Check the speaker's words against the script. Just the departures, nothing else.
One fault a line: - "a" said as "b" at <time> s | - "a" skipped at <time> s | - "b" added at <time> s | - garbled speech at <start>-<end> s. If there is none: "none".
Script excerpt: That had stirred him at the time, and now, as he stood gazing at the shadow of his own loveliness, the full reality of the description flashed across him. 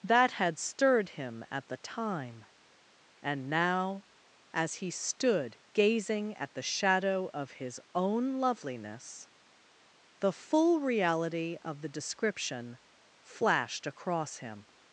none